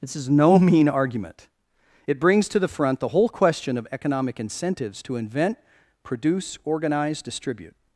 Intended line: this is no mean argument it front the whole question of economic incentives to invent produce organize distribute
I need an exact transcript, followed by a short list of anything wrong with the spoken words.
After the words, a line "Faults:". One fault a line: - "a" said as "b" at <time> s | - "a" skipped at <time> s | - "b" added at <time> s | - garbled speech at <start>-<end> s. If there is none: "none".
this is no mean argument it brings to the front the whole question of economic incentives to invent produce organize distribute
Faults:
- "brings to the" added at 2.2 s